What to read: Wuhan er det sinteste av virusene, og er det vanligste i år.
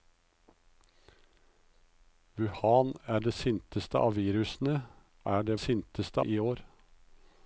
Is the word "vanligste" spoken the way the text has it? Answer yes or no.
no